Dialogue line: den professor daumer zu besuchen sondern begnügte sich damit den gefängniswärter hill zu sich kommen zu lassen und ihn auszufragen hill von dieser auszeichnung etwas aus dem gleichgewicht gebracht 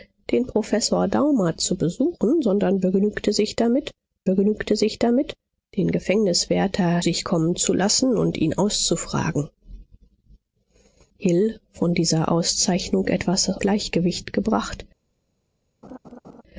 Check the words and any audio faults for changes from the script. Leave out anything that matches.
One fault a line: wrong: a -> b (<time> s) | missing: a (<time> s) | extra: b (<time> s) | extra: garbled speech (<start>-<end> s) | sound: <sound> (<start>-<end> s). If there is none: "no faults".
extra: begnügte sich damit (4.2 s)
missing: hill zu (7.0 s)
missing: aus dem (13.5 s)
sound: laugh (15.8-16.4 s)